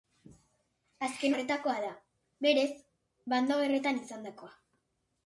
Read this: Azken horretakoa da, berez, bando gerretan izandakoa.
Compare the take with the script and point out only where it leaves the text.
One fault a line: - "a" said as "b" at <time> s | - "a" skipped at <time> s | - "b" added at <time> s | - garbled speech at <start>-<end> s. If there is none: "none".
none